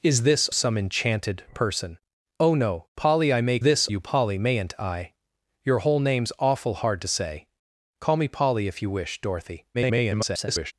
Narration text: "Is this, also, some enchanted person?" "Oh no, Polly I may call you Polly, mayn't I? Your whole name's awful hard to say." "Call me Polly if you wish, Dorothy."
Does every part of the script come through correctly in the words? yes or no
no